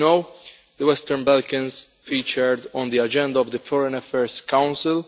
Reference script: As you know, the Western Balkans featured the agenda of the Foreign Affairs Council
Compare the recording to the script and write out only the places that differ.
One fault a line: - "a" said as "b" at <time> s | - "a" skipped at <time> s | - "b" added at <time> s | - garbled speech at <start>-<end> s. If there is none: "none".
- "on" added at 2.7 s